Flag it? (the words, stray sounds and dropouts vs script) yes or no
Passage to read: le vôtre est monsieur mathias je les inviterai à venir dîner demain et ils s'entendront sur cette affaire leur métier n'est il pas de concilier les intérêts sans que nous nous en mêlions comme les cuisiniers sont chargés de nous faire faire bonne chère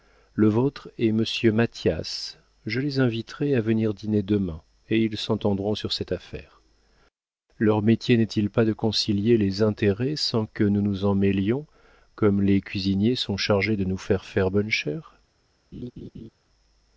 yes